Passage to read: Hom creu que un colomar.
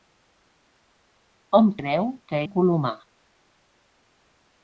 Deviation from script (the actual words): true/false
false